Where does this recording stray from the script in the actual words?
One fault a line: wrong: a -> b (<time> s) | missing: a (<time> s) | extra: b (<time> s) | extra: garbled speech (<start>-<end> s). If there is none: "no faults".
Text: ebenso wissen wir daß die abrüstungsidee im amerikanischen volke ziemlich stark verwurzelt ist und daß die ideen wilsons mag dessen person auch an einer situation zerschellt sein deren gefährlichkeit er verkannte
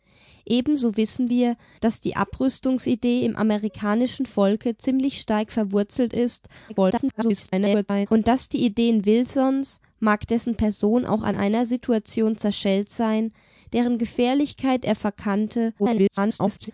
extra: garbled speech (6.7-8.1 s)
extra: garbled speech (15.8-16.7 s)